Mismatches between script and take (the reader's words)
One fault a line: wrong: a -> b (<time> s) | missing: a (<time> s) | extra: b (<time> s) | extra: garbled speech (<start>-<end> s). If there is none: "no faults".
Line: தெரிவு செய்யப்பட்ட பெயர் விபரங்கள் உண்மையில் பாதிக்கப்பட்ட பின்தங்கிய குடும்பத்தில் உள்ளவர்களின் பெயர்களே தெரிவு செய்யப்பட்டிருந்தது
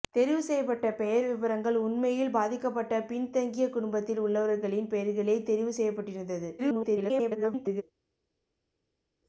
extra: garbled speech (6.6-7.8 s)